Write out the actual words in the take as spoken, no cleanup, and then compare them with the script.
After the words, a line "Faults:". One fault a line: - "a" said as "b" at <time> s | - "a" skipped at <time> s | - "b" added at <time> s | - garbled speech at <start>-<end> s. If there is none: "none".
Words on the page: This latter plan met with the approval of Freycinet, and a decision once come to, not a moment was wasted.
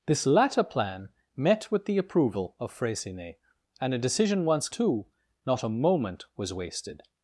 This latter plan met with the approval of Freycinet, and a decision once to, not a moment was wasted.
Faults:
- "come" skipped at 4.7 s